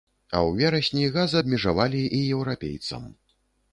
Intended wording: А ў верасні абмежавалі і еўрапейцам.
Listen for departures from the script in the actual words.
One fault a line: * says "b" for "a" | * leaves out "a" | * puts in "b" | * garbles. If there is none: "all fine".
* puts in "газ"